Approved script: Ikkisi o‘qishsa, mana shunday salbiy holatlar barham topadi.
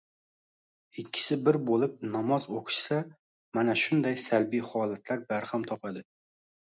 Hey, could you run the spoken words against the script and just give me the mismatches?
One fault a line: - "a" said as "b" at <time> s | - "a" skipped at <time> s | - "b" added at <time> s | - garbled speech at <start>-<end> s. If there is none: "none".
- "bir bo‘lib namoz" added at 1.5 s